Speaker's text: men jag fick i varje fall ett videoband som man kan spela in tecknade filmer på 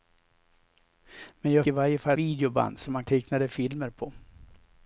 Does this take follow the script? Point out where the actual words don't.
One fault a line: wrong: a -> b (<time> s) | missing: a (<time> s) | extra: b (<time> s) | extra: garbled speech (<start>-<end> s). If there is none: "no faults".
missing: fick (1.7 s)
missing: ett (2.1 s)
missing: kan spela in (3.0 s)